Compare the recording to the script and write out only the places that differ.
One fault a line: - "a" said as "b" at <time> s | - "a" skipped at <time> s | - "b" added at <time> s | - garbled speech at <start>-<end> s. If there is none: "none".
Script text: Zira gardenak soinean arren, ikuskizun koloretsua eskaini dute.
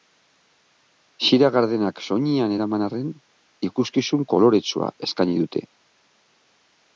- "eraman" added at 2.5 s